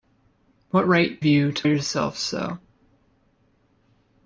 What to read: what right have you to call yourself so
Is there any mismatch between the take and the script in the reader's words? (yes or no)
yes